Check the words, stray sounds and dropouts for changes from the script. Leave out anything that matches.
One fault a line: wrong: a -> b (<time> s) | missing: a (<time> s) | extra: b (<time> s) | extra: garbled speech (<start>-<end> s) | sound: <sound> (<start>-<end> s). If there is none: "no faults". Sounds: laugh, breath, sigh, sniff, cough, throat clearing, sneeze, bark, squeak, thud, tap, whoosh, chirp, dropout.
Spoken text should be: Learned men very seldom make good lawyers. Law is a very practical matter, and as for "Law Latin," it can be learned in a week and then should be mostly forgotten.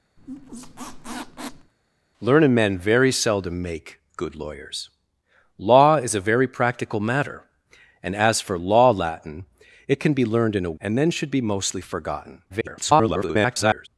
sound: squeak (0.2-1.7 s)
missing: week (10.8 s)
extra: garbled speech (12.5-13.9 s)